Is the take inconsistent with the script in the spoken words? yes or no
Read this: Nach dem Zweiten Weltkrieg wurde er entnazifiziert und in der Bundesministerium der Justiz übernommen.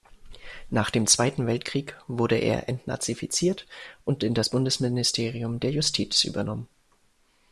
yes